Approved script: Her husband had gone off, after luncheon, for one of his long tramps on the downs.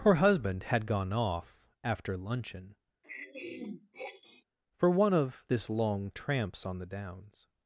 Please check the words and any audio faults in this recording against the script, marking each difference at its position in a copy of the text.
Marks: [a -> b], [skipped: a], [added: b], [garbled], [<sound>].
Her husband had gone off, after luncheon, [throat clearing] for one of [his -> this] long tramps on the downs.